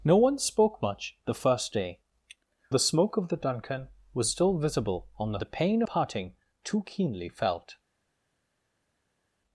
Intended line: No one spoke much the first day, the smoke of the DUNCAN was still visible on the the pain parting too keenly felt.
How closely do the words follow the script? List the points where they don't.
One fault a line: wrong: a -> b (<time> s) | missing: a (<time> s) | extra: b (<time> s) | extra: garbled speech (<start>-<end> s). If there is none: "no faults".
no faults